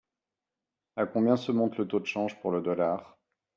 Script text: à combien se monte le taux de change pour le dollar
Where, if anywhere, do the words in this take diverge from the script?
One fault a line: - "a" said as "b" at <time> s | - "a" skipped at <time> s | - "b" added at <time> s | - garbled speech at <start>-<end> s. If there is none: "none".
none